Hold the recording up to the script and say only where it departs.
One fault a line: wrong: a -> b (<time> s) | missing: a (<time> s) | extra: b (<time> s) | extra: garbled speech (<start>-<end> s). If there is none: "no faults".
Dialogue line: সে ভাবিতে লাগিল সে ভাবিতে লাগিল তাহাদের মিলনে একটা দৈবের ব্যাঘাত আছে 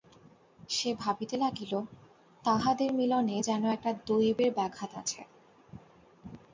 missing: সে ভাবিতে লাগিল (1.7 s)
extra: যেন (3.4 s)